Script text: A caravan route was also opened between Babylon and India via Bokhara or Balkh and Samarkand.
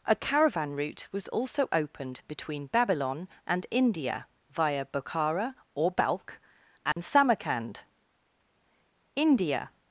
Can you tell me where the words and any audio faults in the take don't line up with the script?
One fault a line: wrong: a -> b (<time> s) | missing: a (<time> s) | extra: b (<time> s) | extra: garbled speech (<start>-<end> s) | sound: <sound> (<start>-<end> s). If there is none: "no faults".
sound: dropout (6.9-7.0 s)
extra: India (9.2 s)